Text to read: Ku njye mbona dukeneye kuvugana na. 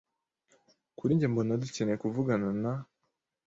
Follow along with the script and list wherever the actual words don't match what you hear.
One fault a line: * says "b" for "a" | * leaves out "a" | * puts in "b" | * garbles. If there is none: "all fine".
* says "Kuri" for "Ku"